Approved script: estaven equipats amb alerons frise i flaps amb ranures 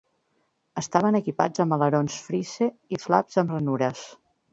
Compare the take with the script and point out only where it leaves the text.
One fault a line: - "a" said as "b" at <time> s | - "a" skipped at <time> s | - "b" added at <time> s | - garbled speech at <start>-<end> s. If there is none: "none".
none